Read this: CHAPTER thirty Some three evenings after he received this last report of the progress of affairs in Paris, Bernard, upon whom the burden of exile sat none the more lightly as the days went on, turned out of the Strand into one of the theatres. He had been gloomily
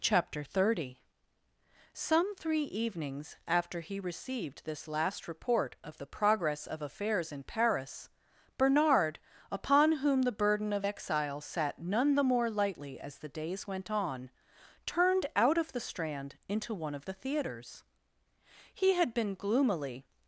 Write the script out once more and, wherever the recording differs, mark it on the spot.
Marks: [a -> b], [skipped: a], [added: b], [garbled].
CHAPTER thirty Some three evenings after he received this last report of the progress of affairs in Paris, Bernard, upon whom the burden of exile sat none the more lightly as the days went on, turned out of the Strand into one of the theatres. He had been gloomily